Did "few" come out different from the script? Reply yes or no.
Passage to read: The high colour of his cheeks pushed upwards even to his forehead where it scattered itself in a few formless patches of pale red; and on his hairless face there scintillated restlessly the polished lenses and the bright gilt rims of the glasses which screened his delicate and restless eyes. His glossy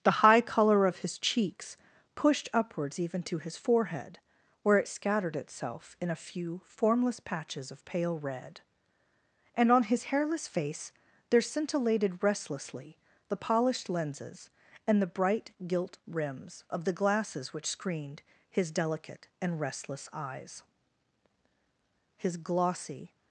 no